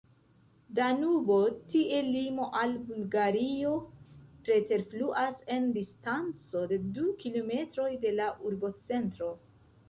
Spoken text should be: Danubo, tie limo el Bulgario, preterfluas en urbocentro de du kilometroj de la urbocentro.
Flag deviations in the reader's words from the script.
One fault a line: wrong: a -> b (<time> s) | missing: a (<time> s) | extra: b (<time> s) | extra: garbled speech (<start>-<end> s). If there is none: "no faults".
wrong: el -> al (2.6 s)
wrong: urbocentro -> distanco (5.8 s)